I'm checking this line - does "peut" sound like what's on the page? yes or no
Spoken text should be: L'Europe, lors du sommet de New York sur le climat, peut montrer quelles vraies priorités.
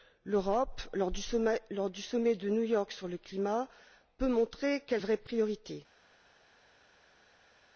yes